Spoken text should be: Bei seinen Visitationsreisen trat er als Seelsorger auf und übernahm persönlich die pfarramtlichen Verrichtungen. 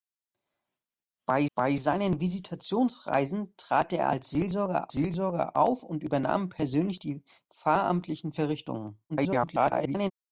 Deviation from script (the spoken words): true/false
true